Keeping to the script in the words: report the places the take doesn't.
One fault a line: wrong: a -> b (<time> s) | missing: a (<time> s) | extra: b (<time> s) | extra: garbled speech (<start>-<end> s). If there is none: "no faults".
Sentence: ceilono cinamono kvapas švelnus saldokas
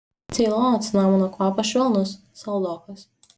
no faults